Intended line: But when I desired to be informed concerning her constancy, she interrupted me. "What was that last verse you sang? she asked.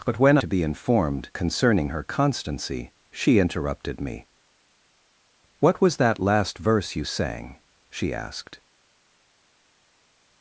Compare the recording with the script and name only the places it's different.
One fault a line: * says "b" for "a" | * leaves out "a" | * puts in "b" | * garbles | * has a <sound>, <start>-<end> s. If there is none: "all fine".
* leaves out "I desired"